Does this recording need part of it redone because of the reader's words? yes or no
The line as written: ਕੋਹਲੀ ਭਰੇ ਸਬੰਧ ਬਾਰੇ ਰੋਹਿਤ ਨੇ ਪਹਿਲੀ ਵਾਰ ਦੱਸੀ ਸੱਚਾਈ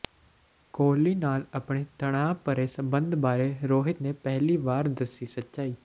yes